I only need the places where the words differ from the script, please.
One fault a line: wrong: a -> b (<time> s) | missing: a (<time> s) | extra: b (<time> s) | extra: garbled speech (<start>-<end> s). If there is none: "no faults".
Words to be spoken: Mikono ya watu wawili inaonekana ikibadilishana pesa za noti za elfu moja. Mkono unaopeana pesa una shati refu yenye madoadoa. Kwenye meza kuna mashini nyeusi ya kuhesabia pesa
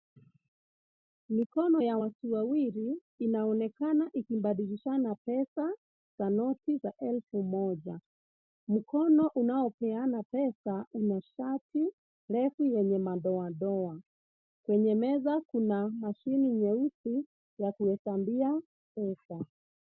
no faults